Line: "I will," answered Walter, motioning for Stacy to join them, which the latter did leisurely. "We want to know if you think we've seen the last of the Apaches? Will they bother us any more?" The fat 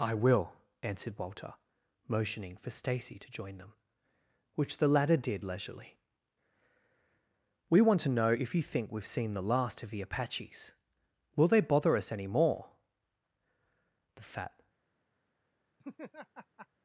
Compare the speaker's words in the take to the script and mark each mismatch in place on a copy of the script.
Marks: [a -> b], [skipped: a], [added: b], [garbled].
"I will," answered Walter, motioning for Stacy to join them, which the latter did leisurely. "We want to know if you think we've seen the last of the Apaches? Will they bother us any more?" The fat